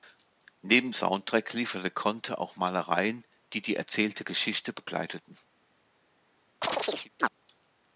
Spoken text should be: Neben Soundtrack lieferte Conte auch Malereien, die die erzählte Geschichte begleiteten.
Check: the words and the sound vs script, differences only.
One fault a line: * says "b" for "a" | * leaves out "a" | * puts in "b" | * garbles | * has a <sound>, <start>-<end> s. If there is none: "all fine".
* has a chirp, 6.6-7.3 s